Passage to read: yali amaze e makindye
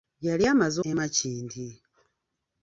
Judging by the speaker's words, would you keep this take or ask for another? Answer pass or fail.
pass